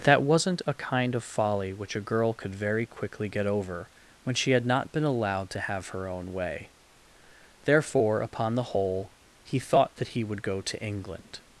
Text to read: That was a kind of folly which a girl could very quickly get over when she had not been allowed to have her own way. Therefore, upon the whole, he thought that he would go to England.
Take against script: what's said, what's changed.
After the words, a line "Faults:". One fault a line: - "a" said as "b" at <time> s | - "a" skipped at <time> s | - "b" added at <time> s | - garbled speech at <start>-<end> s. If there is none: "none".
That wasn't a kind of folly which a girl could very quickly get over when she had not been allowed to have her own way. Therefore, upon the whole, he thought that he would go to England.
Faults:
- "was" said as "wasn't" at 0.2 s